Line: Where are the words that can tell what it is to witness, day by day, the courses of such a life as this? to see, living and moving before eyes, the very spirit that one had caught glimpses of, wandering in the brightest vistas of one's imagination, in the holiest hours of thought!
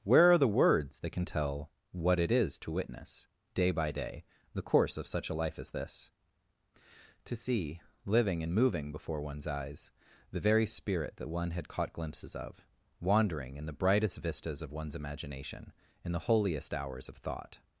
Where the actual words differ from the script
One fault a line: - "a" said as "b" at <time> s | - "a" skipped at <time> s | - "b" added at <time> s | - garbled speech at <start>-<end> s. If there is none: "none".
- "courses" said as "course" at 4.6 s
- "one's" added at 9.2 s